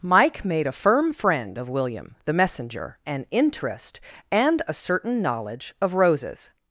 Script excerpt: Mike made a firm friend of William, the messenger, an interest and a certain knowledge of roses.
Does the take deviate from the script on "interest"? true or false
false